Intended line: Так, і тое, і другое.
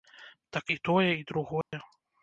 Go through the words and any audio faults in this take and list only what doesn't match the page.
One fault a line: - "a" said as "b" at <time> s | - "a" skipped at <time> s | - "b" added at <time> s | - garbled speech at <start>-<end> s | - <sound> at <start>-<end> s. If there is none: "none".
- dropout at 1.6-1.7 s